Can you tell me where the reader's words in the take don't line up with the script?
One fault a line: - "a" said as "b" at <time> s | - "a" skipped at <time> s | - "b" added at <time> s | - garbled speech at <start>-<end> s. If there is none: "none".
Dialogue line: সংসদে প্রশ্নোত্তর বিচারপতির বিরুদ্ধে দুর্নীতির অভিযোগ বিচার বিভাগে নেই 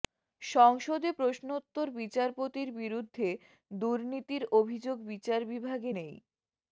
none